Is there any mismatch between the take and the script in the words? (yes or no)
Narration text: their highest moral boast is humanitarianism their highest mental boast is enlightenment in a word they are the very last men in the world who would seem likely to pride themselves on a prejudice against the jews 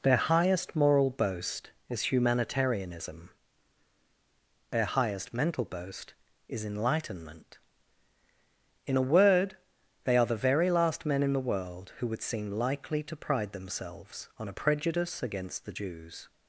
no